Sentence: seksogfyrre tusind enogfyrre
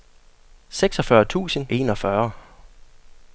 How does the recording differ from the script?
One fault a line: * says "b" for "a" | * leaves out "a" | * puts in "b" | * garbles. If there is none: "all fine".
all fine